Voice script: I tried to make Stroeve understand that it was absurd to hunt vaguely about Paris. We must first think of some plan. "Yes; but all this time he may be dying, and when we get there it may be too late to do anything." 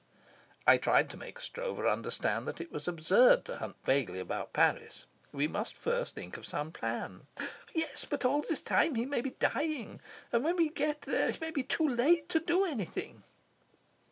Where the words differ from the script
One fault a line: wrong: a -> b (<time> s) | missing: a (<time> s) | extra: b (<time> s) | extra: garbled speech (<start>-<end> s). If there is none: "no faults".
no faults